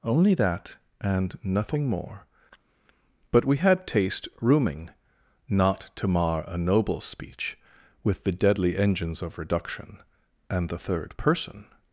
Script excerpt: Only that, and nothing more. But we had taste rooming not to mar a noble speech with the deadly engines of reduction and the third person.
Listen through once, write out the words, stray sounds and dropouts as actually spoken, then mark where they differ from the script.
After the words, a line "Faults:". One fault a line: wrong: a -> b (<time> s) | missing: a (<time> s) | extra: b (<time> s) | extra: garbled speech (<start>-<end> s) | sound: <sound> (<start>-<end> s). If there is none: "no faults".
Only that, and nothing more. But we had taste rooming not to mar a noble speech with the deadly engines of reduction and the third person.
Faults:
no faults